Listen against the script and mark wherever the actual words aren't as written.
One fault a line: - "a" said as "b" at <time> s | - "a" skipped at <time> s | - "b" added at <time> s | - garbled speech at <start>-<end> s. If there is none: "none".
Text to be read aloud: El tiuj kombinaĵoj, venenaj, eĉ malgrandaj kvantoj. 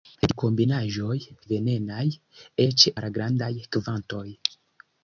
none